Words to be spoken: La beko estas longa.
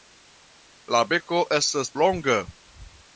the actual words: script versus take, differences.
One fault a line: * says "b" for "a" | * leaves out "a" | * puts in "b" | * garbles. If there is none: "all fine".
all fine